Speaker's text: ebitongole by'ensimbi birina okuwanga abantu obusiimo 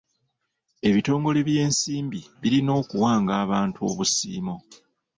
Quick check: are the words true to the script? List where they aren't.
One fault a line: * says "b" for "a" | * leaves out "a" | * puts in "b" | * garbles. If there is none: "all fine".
all fine